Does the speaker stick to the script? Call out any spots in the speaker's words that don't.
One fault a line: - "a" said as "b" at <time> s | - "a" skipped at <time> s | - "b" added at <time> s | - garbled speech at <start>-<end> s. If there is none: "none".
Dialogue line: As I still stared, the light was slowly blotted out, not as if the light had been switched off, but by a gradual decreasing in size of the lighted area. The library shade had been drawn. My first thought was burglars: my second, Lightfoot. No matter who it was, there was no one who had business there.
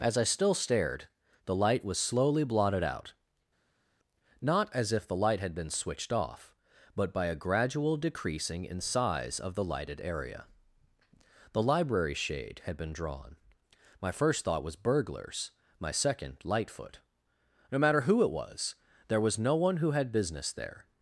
none